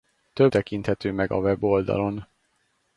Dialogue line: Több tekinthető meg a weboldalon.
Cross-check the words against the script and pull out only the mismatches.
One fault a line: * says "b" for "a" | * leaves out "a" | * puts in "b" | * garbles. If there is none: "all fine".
all fine